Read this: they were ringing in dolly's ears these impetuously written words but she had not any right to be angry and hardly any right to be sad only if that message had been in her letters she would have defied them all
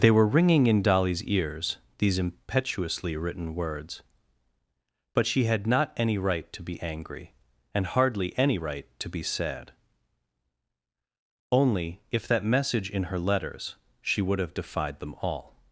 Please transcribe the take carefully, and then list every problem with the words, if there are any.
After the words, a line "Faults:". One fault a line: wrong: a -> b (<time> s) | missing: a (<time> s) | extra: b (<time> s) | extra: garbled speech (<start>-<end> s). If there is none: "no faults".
they were ringing in dolly's ears these impetuously written words but she had not any right to be angry and hardly any right to be sad only if that message in her letters she would have defied them all
Faults:
missing: had been (12.9 s)